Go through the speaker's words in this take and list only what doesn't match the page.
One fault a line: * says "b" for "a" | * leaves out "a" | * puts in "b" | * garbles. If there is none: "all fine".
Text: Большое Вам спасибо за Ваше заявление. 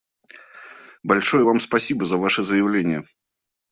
all fine